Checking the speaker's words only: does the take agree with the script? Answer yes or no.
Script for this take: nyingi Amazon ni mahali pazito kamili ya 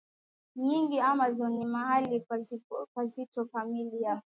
yes